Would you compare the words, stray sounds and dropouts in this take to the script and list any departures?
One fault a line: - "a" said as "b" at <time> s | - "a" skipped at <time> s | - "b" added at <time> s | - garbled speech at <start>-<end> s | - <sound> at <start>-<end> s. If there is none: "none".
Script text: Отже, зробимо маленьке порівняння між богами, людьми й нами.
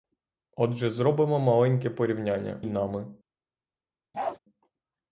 - "між богами людьми" skipped at 2.7 s
- bark at 4.1-4.4 s